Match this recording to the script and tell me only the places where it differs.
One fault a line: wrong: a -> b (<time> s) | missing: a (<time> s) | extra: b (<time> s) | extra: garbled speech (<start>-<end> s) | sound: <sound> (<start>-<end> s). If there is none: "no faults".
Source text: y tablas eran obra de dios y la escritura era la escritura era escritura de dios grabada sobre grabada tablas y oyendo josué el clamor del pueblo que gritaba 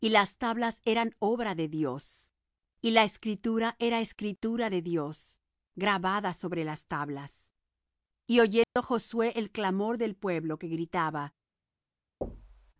extra: las (0.1 s)
missing: la (4.0 s)
missing: era escritura (4.7 s)
wrong: grabada -> las (6.6 s)
sound: dropout (8.6-8.8 s)
sound: thud (12.2-12.7 s)